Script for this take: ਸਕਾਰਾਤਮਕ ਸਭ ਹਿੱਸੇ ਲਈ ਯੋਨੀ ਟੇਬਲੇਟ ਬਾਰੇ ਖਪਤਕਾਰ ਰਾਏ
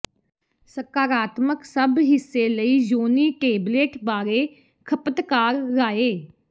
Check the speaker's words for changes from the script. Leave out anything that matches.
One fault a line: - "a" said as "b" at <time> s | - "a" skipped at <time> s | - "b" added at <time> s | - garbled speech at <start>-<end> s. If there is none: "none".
none